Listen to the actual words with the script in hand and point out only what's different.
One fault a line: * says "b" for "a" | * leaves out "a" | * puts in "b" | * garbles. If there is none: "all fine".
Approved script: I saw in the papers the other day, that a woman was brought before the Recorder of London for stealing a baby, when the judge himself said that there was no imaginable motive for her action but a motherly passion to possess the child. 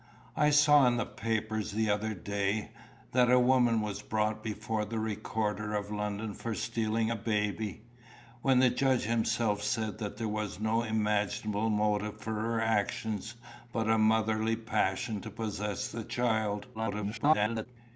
* garbles